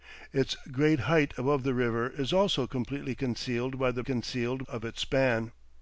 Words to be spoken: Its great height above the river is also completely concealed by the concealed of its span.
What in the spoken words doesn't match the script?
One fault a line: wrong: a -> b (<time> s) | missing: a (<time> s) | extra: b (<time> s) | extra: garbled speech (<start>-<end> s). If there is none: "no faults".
no faults